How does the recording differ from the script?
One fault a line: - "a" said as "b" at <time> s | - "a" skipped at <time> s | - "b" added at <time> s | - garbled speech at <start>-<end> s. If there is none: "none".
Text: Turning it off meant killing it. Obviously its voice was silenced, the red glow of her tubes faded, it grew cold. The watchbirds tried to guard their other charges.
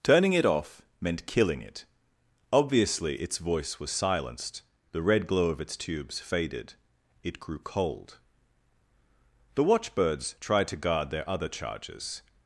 - "her" said as "its" at 5.6 s